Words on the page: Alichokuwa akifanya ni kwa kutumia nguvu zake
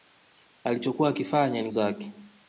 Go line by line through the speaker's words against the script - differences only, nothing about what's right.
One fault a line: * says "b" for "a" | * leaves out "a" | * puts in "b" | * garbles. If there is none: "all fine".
* leaves out "kwa kutumia nguvu"